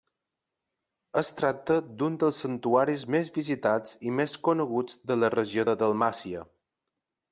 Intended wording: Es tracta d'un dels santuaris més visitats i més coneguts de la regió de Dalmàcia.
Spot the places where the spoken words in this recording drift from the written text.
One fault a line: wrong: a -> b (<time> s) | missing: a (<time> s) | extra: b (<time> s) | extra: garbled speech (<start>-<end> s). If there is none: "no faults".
no faults